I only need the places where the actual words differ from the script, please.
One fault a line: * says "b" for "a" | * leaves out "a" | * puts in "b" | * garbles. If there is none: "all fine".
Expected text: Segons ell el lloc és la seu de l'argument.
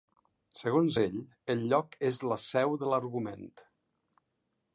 all fine